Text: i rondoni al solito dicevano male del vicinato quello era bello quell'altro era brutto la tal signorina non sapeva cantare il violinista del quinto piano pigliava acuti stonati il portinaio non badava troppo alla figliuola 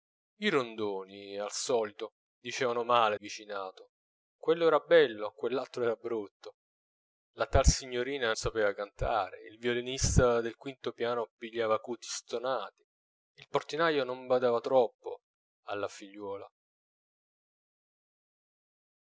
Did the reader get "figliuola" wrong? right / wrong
right